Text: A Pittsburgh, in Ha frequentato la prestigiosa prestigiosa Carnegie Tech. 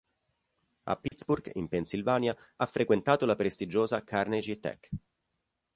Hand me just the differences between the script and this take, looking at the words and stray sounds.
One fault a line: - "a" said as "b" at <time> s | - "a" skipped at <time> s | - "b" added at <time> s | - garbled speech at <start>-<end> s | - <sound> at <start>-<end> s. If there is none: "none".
- dropout at 1.1-1.1 s
- "Pennsylvania" added at 1.7 s
- "prestigiosa" skipped at 4.0 s